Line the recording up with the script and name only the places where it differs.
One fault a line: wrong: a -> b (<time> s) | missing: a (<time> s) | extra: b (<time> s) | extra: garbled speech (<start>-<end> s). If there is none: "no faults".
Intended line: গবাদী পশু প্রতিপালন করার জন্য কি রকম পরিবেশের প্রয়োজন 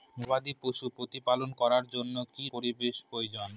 missing: রকম (2.5 s)